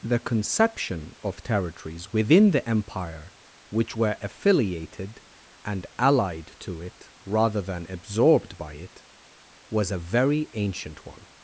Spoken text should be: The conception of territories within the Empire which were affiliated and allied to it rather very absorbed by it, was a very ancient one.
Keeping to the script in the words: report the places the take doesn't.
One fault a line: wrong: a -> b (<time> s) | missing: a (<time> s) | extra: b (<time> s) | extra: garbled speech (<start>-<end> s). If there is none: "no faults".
wrong: very -> than (7.6 s)